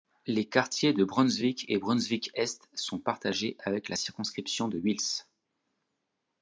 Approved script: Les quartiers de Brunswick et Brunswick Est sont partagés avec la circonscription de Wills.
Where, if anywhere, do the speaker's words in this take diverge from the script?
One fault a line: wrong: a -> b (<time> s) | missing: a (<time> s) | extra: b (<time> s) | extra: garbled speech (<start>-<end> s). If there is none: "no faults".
no faults